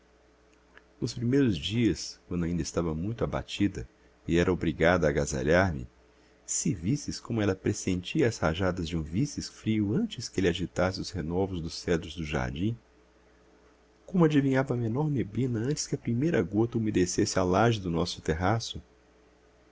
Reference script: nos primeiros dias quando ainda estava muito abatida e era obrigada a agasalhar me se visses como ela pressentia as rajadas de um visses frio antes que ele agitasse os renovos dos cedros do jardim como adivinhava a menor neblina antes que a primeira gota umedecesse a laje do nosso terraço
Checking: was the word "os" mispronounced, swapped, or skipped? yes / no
no